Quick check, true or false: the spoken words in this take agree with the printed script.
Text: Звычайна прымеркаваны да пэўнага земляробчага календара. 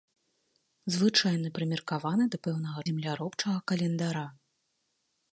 true